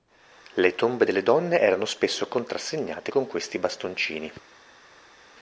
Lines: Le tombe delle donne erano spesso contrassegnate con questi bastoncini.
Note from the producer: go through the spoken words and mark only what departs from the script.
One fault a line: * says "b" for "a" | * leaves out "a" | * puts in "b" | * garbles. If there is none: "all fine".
all fine